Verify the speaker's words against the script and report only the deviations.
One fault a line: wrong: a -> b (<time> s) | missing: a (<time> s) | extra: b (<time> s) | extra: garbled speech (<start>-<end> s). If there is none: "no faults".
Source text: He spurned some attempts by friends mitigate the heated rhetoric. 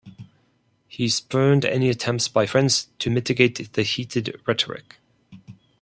wrong: some -> any (1.6 s)
extra: to (3.0 s)